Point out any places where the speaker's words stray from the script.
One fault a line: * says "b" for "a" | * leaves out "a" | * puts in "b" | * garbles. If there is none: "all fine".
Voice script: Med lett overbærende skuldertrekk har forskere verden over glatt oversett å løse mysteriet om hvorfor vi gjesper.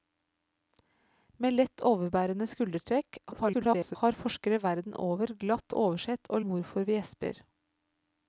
* garbles
* leaves out "løse mysteriet"